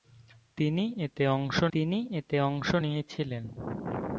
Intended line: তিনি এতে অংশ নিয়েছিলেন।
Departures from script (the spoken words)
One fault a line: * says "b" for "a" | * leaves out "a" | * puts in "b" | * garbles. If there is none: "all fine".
* puts in "তিনি এতে অংশ"